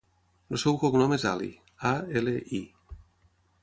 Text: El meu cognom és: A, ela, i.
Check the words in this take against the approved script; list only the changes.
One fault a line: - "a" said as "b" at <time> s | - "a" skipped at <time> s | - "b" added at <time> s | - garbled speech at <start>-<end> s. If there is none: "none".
- "meu" said as "seu" at 0.6 s
- "Ali" added at 1.3 s